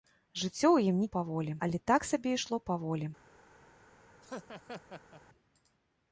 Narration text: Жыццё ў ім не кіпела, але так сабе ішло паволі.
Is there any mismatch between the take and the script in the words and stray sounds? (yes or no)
yes